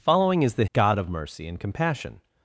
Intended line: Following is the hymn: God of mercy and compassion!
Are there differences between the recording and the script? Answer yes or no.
yes